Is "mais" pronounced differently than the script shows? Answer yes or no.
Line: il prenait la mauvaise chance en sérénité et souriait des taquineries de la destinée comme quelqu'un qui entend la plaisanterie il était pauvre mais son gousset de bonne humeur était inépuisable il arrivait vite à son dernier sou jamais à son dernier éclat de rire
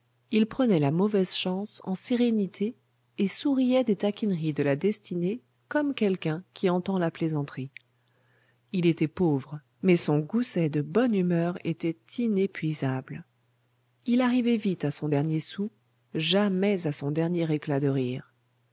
no